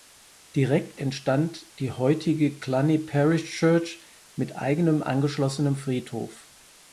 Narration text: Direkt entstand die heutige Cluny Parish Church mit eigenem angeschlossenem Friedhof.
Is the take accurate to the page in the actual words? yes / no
yes